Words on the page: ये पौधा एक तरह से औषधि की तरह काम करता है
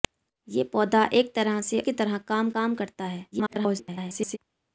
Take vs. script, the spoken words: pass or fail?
fail